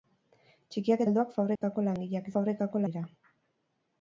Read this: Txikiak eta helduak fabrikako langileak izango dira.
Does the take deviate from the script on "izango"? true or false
true